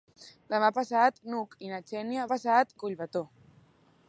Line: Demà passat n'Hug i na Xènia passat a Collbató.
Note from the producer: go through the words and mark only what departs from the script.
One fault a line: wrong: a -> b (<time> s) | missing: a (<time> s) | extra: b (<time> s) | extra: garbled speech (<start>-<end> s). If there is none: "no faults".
no faults